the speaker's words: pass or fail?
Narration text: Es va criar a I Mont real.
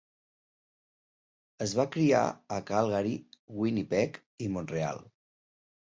fail